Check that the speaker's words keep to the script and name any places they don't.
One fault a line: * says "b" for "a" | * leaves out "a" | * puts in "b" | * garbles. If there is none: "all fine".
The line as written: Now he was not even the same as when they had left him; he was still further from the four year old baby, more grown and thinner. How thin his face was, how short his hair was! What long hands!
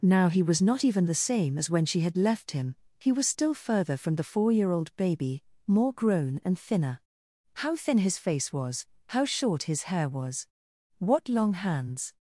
* says "she" for "they"